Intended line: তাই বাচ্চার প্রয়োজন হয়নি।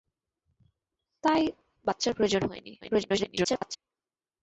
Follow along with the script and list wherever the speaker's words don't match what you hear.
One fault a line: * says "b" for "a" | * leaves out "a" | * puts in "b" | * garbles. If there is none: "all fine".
* garbles